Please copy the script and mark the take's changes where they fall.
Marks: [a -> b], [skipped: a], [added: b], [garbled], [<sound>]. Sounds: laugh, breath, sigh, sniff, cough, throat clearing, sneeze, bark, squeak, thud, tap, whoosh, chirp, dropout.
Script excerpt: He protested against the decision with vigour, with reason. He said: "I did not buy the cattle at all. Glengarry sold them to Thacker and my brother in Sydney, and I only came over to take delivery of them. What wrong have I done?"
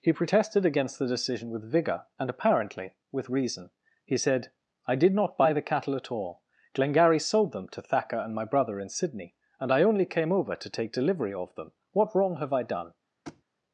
He protested against the decision with vigour, [added: and apparently] with reason. He said: "I did not buy the cattle at all. Glengarry sold them to Thacker and my brother in Sydney, and I only came over to take delivery of them. What wrong have I done?" [thud]